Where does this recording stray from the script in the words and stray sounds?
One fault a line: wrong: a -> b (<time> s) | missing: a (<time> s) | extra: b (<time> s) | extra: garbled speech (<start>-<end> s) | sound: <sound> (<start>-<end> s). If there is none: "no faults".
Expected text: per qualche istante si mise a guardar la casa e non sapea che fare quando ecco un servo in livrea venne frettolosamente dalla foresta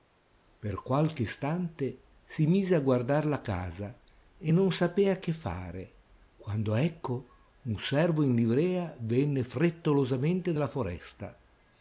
no faults